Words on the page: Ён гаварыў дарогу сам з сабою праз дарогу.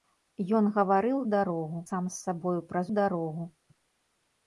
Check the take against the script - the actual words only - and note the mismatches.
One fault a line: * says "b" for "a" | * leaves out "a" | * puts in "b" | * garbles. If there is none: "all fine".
all fine